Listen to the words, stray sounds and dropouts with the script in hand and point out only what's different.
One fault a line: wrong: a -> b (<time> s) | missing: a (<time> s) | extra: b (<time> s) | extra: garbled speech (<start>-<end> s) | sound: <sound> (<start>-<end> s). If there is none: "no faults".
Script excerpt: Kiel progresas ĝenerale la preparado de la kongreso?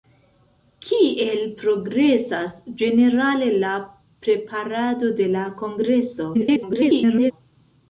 extra: garbled speech (6.3-7.3 s)